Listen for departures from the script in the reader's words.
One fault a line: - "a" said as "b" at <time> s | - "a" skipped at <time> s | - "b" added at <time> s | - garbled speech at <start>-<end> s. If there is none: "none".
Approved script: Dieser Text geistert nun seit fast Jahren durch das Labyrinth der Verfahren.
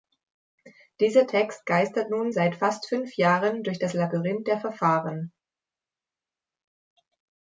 - "fünf" added at 2.9 s